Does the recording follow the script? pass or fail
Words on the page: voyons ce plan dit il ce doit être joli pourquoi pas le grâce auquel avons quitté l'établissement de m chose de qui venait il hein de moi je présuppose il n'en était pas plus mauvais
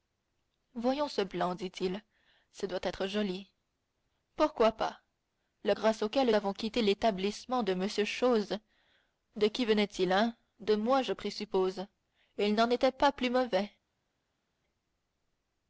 pass